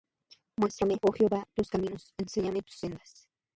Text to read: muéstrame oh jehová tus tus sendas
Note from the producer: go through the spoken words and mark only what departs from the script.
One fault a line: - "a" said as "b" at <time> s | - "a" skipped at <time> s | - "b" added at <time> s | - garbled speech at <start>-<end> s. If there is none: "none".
- "caminos enséñame" added at 1.7 s